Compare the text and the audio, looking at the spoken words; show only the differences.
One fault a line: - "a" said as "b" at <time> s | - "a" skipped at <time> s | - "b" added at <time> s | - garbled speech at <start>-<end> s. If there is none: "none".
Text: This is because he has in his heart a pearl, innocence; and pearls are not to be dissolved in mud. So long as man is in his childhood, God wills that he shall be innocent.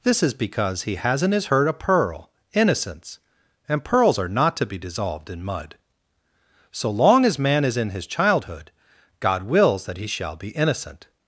- "heart" said as "hurt" at 1.4 s